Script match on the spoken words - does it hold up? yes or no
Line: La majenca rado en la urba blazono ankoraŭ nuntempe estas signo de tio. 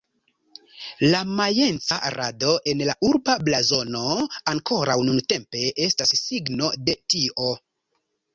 yes